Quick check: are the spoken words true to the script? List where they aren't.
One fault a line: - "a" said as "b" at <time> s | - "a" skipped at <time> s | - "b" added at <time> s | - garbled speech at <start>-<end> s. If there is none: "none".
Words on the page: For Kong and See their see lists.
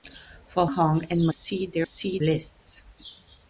none